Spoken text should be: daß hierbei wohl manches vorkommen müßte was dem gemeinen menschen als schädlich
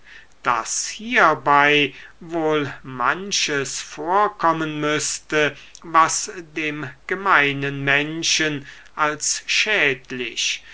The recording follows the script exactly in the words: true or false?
true